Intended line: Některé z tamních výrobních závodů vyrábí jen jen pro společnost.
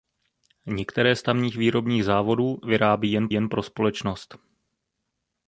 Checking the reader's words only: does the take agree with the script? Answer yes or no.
yes